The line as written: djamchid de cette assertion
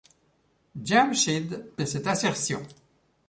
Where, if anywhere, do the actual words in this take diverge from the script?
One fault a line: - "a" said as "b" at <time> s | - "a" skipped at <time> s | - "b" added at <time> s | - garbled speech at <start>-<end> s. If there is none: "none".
none